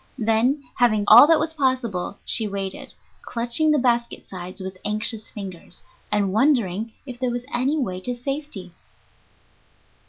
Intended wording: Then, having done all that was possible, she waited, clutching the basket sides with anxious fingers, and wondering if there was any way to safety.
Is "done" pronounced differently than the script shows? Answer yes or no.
yes